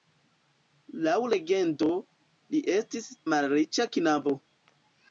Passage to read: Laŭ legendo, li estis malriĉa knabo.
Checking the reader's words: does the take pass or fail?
pass